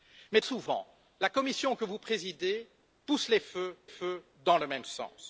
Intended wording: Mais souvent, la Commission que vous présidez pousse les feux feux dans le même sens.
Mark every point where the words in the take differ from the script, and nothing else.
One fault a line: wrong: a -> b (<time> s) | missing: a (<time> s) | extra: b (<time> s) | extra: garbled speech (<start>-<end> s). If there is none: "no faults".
no faults